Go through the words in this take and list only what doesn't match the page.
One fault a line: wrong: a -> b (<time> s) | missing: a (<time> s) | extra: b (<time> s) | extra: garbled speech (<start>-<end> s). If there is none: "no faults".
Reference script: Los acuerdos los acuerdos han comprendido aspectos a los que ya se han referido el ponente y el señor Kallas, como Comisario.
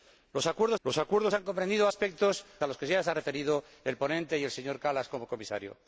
no faults